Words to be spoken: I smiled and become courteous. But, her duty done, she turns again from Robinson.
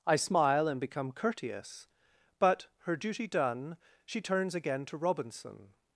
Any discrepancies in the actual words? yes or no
yes